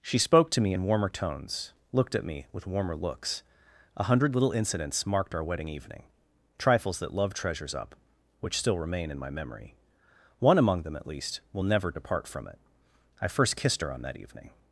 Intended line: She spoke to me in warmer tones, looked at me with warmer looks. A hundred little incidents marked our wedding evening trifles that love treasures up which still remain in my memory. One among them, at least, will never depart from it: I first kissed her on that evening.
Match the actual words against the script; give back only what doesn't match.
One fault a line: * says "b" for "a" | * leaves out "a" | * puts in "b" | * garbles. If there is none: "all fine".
all fine